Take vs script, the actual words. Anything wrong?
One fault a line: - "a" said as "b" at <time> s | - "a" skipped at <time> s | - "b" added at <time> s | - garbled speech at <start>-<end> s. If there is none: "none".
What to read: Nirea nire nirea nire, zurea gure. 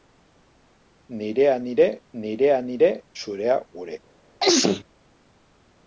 none